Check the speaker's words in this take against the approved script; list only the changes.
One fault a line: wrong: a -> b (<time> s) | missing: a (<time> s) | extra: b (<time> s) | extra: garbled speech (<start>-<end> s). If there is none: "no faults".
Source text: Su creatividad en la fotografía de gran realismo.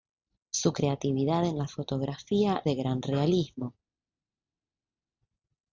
no faults